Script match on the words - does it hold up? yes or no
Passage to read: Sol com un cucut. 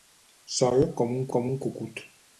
no